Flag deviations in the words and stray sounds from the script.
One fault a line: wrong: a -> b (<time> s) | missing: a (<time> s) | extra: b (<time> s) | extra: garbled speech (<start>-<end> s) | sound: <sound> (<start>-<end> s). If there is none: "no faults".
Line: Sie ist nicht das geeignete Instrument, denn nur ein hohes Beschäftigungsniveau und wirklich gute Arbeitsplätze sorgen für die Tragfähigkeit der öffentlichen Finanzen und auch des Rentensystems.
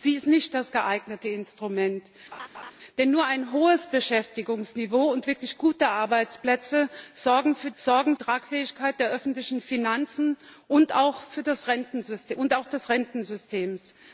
sound: laugh (2.3-2.7 s)
wrong: die -> sorgen (7.8 s)